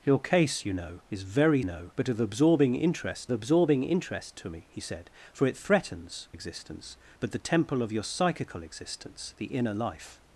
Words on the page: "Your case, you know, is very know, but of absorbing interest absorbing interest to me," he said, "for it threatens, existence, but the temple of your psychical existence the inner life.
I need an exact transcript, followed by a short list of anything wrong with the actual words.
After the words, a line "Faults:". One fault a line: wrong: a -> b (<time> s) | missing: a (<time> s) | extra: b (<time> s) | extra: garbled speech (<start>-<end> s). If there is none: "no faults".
"Your case, you know, is very know, but of absorbing interest absorbing interest to me," he said, "for it threatens, existence, but the temple of your psychical existence the inner life.
Faults:
no faults